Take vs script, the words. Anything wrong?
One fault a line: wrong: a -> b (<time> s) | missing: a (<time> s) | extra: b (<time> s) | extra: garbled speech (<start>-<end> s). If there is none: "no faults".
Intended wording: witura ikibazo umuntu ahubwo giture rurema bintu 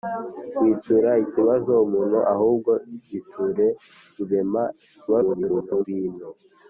extra: garbled speech (5.1-5.9 s)